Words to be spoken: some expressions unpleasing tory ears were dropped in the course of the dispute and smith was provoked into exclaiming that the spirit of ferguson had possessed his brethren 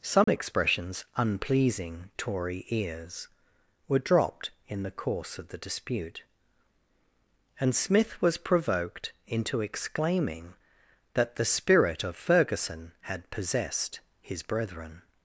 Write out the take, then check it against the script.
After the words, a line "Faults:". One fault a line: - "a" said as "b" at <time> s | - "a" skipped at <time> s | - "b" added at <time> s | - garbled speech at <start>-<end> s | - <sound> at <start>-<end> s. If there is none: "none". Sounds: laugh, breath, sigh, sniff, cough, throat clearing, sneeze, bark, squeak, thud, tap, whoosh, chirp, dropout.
some expressions unpleasing tory ears were dropped in the course of the dispute and smith was provoked into exclaiming that the spirit of ferguson had possessed his brethren
Faults:
- dropout at 0.2-0.3 s